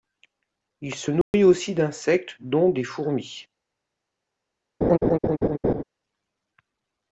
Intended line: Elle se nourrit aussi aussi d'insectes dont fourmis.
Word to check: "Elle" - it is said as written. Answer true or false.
false